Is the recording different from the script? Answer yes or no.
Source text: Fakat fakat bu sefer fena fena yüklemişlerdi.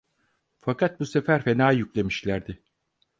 yes